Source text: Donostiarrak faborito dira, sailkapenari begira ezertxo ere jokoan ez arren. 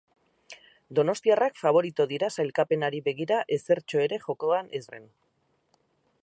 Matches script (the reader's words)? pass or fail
pass